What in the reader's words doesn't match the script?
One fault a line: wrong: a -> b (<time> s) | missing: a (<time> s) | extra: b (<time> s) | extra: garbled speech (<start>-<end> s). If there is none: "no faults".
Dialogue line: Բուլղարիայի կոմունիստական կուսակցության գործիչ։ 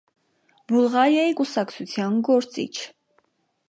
missing: կոմունիստական (1.4 s)